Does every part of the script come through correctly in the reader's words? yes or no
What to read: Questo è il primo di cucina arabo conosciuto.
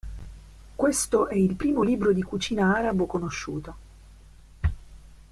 no